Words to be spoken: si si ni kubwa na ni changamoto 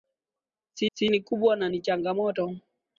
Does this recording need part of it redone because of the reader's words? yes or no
no